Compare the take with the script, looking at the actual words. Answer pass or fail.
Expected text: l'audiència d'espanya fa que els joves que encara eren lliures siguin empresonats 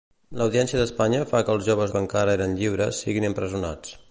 pass